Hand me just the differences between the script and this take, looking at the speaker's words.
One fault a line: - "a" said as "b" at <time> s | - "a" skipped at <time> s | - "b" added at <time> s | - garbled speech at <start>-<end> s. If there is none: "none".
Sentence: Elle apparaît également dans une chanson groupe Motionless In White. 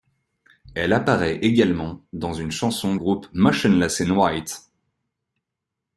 none